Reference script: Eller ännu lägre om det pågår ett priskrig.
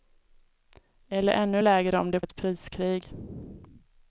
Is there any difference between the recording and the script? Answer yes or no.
yes